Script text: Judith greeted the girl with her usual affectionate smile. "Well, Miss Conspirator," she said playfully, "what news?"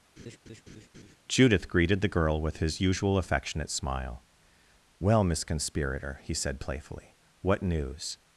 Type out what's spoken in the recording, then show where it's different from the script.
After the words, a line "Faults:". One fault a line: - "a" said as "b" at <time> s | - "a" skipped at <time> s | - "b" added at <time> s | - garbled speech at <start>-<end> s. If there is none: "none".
Judith greeted the girl with his usual affectionate smile. "Well, Miss Conspirator," he said playfully, "what news?"
Faults:
- "her" said as "his" at 2.6 s
- "she" said as "he" at 6.2 s